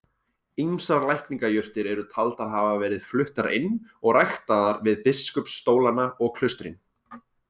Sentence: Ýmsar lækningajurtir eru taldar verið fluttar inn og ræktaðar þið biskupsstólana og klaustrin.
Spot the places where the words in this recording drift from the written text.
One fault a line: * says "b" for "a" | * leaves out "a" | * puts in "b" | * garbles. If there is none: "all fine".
* puts in "hafa"
* says "við" for "þið"